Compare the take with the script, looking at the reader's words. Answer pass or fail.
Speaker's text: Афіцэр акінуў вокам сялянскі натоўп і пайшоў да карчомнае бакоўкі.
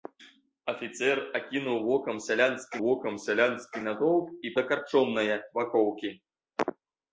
fail